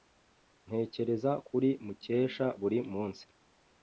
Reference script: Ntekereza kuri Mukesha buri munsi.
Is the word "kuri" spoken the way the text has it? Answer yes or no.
yes